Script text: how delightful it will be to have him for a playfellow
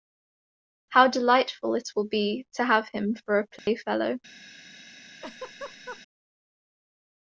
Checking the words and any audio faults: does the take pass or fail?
fail